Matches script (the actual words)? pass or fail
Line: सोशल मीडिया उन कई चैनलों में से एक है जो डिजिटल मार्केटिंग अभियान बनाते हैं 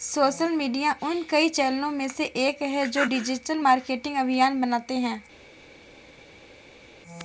pass